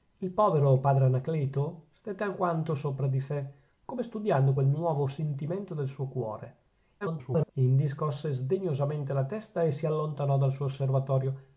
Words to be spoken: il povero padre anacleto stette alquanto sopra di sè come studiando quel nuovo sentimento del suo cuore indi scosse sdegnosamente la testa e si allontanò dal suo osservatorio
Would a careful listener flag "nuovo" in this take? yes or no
no